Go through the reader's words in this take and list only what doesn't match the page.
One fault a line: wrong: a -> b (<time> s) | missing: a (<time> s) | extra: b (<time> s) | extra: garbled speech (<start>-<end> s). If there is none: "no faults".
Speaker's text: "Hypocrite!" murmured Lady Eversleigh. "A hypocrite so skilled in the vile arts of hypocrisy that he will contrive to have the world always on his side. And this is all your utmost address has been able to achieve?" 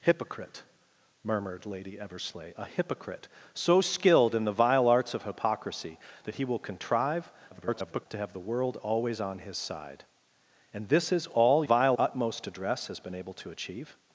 extra: garbled speech (7.5-8.1 s)
wrong: your -> vile (11.6 s)